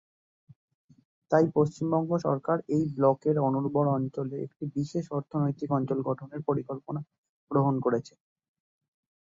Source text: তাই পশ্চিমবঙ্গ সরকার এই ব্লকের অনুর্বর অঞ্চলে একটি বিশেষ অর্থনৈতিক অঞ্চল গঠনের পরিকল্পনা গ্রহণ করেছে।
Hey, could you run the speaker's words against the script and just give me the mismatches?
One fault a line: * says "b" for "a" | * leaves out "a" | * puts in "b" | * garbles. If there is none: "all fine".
all fine